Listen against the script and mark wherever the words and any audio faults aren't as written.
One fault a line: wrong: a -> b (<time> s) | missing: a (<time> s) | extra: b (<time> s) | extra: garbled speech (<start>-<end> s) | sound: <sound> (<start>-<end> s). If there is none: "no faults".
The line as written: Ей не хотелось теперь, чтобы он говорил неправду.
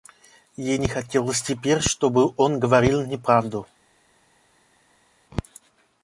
no faults